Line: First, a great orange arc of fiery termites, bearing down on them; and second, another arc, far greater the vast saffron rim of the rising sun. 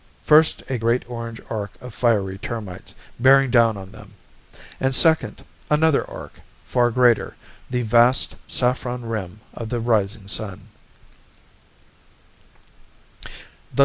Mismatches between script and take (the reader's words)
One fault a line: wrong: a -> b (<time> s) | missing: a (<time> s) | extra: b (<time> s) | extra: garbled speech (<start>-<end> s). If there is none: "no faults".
no faults